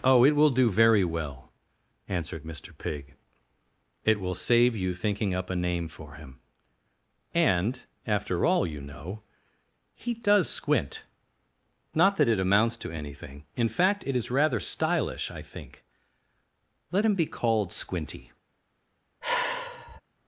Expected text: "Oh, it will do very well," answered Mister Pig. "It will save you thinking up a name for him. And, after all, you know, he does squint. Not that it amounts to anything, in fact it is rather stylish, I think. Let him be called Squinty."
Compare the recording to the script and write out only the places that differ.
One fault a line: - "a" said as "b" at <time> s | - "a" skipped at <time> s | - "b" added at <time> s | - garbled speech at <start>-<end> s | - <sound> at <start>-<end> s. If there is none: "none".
- sigh at 19.2-20.0 s